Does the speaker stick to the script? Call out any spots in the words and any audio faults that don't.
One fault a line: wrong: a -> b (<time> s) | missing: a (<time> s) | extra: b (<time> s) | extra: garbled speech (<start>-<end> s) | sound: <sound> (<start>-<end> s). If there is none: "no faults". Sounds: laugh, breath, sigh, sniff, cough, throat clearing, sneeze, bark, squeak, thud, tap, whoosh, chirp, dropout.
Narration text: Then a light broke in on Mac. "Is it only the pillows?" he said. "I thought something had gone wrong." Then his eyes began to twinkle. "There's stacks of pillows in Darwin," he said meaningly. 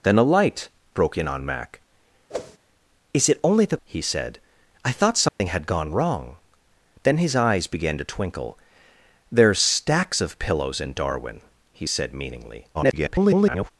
sound: whoosh (2.3-2.6 s)
missing: pillows (3.8 s)
sound: dropout (5.3-5.4 s)
extra: garbled speech (12.7-13.7 s)